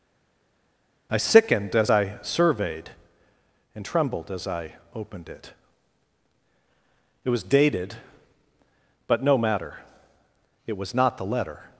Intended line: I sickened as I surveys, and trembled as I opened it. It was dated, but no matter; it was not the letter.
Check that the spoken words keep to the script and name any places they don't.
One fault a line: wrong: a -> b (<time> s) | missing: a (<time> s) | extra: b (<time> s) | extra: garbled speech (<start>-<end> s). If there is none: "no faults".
wrong: surveys -> surveyed (2.2 s)